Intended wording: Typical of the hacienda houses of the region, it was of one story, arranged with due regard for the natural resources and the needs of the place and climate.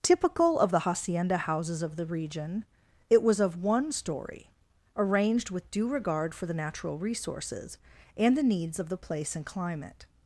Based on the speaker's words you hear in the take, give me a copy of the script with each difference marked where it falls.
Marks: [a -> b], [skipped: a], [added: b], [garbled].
Typical of the hacienda houses of the region, it was of one story, arranged with due regard for the natural resources and the needs of the place and climate.